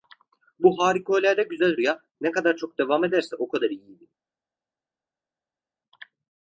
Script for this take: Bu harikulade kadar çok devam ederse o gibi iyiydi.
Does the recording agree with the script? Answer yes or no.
no